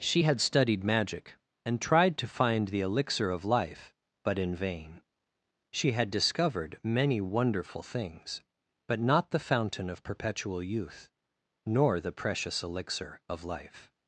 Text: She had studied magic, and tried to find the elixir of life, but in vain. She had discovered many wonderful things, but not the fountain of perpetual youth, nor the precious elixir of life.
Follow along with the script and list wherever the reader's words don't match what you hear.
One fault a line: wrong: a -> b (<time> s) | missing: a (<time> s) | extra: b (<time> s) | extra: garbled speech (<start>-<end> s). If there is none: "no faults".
no faults